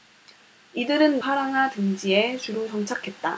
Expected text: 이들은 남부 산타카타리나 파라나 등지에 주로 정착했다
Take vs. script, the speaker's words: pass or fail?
fail